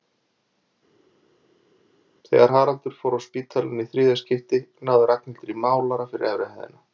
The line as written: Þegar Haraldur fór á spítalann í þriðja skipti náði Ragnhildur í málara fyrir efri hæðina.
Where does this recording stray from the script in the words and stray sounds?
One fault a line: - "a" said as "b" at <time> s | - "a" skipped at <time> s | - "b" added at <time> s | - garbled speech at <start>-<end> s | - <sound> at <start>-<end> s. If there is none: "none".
none